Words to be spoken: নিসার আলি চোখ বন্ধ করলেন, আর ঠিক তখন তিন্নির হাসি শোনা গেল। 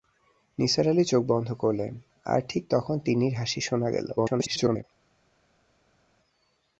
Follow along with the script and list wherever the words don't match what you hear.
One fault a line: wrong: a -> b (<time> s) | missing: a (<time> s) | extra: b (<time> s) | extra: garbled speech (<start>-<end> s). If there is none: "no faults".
extra: garbled speech (4.2-4.8 s)